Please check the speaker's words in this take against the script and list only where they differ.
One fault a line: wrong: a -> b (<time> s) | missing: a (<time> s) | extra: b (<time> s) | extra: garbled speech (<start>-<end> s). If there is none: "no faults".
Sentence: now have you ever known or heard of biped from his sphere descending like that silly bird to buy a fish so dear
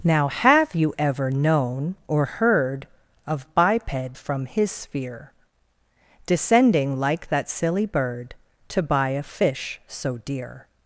no faults